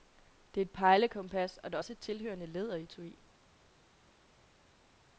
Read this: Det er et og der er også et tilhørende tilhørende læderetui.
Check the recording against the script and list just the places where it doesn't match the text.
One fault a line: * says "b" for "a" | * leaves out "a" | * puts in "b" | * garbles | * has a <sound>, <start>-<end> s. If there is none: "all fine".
* puts in "pejlekompas"
* leaves out "tilhørende"